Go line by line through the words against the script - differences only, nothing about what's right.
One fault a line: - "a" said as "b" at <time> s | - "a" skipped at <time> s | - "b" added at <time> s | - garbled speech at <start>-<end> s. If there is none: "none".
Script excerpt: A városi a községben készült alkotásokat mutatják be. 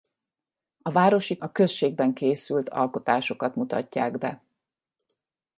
none